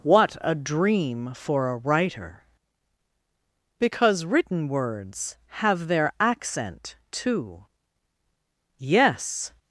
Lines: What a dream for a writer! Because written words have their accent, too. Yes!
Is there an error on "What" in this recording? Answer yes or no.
no